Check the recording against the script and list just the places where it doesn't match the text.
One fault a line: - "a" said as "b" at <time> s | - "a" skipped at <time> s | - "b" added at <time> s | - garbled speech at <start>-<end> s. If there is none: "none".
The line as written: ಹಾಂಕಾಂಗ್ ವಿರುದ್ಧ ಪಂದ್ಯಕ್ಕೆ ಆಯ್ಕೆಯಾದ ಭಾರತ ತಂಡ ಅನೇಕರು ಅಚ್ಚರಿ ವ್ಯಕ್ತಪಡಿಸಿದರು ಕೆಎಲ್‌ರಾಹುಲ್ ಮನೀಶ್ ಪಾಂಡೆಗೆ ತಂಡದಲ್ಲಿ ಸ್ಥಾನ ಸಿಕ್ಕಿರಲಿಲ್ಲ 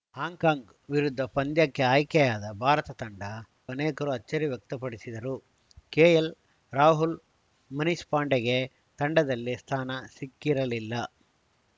none